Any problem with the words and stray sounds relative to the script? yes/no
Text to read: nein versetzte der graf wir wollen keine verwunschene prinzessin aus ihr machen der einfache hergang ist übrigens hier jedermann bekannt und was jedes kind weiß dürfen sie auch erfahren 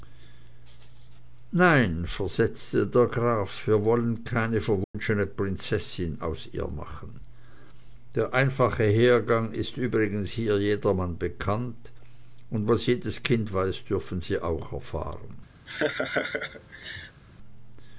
yes